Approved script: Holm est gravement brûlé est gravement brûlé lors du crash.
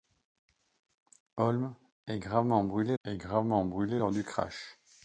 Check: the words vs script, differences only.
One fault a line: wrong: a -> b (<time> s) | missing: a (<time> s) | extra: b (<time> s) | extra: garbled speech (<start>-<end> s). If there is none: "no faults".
no faults